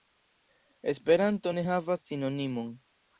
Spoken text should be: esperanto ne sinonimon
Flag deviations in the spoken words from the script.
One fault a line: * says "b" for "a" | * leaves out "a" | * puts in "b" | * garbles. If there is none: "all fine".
* puts in "havas"